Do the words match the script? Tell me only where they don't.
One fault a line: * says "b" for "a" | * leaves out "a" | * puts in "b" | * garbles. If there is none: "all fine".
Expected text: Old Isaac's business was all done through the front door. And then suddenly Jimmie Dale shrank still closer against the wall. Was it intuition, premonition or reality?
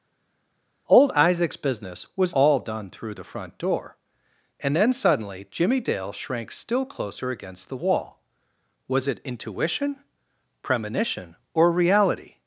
all fine